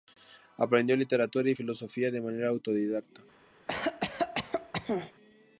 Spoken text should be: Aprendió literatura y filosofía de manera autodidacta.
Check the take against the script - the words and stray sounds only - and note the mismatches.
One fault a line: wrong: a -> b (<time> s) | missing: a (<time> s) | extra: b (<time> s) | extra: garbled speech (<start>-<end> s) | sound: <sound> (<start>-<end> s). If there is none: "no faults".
sound: cough (3.7-5.1 s)